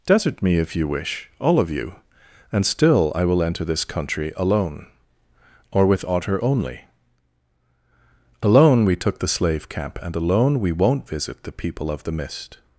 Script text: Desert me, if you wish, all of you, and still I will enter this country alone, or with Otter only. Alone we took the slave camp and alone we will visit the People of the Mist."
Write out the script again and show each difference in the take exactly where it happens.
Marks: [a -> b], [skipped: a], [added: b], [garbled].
Desert me, if you wish, all of you, and still I will enter this country alone, or with Otter only. Alone we took the slave camp and alone we [will -> won't] visit the People of the Mist."